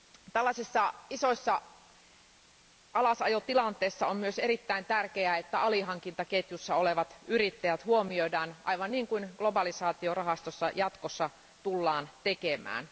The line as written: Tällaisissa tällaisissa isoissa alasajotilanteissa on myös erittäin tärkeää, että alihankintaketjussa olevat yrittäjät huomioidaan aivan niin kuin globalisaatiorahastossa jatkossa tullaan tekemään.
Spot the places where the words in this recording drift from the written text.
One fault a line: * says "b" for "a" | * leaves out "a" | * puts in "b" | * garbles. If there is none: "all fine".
* leaves out "tällaisissa"